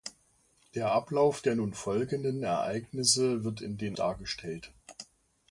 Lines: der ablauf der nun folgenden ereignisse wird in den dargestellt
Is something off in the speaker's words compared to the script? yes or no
no